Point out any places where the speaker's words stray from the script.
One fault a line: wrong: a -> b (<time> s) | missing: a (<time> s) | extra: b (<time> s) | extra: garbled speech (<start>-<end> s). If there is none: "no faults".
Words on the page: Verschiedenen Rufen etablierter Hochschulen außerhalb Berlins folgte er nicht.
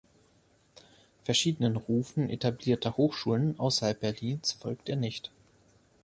no faults